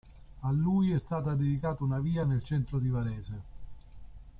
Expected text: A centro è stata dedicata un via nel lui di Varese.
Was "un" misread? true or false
true